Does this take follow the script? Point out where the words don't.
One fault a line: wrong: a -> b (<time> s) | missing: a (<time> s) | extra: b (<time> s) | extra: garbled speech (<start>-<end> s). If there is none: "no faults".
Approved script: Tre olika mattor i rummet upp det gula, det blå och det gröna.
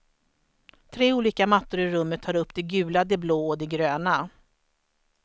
extra: tar (2.2 s)